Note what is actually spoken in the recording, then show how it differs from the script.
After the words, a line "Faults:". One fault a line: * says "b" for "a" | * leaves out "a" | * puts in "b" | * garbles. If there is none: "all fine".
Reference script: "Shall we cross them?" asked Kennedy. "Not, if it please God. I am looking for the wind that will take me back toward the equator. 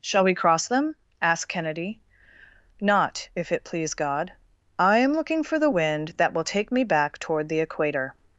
"Shall we cross them?" asked Kennedy. "Not, if it please God. I am looking for the wind that will take me back toward the equator.
Faults:
all fine